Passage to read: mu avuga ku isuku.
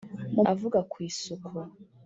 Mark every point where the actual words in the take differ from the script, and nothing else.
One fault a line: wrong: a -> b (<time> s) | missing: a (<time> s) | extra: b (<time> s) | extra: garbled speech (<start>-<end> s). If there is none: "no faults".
no faults